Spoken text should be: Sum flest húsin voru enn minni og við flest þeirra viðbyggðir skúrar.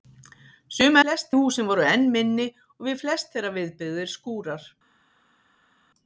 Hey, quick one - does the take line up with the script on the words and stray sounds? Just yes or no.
yes